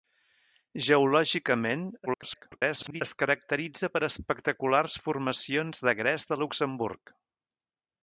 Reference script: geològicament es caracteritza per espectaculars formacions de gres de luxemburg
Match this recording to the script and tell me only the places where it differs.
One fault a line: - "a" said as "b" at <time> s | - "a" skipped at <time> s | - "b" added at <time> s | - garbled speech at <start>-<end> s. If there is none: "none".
- garbled speech at 2.1-3.0 s